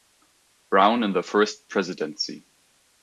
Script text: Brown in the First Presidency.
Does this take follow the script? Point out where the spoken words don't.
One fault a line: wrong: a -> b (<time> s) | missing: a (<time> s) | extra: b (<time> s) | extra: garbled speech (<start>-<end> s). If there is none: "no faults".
no faults